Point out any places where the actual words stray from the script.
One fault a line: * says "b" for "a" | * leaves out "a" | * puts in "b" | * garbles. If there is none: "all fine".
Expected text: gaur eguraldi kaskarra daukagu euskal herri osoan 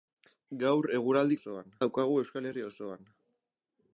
* says "osoan" for "kaskarra"